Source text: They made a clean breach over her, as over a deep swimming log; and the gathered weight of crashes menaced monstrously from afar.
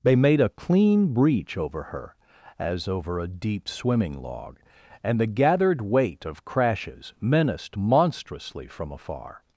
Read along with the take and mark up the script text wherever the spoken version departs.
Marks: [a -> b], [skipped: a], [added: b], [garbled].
They made a clean breach over her, as over a deep swimming log; and the gathered weight of crashes menaced monstrously from afar.